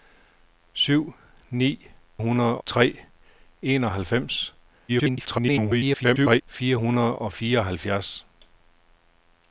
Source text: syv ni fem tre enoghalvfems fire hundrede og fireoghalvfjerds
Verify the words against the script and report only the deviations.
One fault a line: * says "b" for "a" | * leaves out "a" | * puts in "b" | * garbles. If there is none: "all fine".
* says "hundrede" for "fem"
* garbles